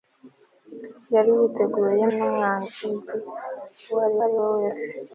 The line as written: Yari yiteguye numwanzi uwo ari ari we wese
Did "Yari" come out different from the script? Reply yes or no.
no